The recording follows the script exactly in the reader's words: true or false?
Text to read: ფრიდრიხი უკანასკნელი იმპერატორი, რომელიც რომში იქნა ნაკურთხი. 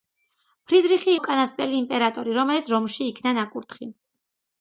true